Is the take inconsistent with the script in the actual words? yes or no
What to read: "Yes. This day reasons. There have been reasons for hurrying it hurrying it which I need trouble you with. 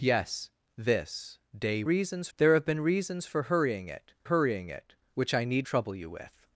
no